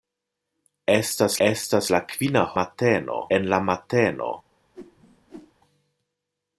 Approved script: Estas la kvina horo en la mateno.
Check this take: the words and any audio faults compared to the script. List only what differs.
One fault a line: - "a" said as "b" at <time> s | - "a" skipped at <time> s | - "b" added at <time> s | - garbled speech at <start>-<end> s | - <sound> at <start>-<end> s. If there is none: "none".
- "estas" added at 1.5 s
- "horo" said as "mateno" at 2.6 s
- whoosh at 4.7-5.5 s